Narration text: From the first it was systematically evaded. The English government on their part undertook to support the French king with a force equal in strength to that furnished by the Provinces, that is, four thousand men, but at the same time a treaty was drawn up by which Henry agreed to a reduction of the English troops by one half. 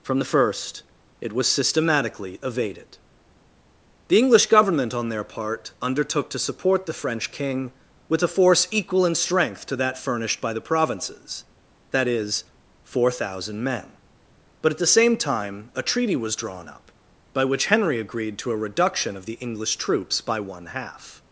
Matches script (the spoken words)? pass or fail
pass